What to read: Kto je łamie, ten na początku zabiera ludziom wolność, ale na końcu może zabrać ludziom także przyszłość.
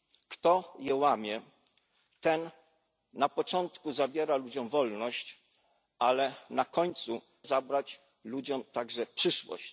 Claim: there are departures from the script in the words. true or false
true